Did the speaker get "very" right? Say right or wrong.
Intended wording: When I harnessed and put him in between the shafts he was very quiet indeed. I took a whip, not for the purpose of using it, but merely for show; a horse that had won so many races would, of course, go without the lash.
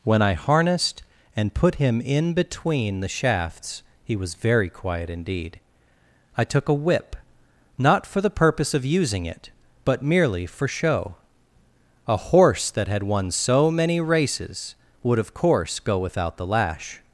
right